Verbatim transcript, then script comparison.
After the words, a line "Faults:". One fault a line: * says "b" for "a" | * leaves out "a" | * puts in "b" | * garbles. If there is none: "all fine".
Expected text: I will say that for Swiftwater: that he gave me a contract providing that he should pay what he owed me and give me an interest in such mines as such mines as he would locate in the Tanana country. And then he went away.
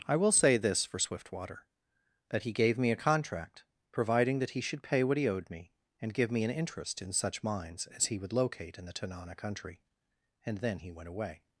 I will say this for Swiftwater: that he gave me a contract providing that he should pay what he owed me and give me an interest in such mines as he would locate in the Tanana country. And then he went away.
Faults:
* says "this" for "that"
* leaves out "such mines as"